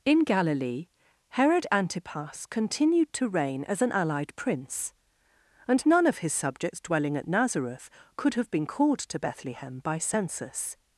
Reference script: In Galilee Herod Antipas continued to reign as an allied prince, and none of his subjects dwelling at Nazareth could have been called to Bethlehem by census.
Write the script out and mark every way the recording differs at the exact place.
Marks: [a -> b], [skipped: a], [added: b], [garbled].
In Galilee Herod Antipas continued to reign as an allied prince, and none of his subjects dwelling at Nazareth could have been called to Bethlehem by census.